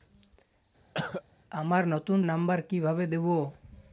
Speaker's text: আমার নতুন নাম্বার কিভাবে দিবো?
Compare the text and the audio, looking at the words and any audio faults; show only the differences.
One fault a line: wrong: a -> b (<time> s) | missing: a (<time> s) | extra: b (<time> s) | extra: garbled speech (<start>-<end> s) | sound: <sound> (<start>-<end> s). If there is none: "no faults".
sound: cough (0.9-1.2 s)